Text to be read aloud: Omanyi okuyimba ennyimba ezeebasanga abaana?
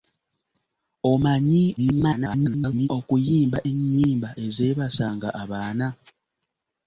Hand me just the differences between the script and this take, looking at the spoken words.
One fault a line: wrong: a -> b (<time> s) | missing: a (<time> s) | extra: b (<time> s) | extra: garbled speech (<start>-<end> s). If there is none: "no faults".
extra: garbled speech (1.8-2.9 s)